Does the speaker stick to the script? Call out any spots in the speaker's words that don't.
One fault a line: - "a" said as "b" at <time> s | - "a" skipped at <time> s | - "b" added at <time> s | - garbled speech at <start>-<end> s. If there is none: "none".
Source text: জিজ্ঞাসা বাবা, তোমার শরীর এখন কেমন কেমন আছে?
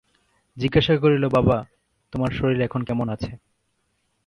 - "করিল" added at 1.0 s
- "কেমন" skipped at 3.1 s